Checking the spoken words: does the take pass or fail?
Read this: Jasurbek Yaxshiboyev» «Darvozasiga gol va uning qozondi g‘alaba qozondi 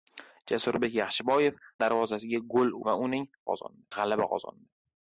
pass